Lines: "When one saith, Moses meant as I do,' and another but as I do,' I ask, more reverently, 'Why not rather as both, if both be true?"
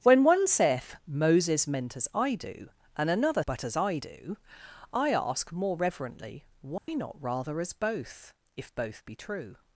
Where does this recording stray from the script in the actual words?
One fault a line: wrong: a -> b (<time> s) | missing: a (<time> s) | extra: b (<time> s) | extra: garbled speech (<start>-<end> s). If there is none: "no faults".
no faults